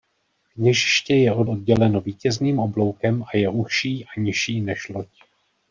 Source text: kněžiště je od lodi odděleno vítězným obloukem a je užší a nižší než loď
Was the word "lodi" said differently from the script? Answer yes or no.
yes